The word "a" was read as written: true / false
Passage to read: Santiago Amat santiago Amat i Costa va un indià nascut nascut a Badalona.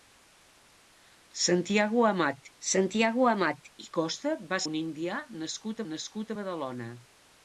true